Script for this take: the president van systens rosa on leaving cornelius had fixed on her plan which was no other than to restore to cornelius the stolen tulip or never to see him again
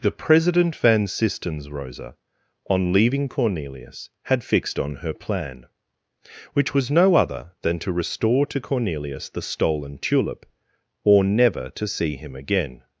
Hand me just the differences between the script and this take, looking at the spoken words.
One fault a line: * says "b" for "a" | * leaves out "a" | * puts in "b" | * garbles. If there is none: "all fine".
all fine